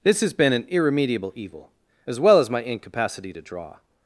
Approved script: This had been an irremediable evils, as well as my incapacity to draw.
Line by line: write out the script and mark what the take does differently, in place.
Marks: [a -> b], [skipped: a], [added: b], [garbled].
This [had -> has] been an irremediable [evils, -> evil] as well as my incapacity to draw.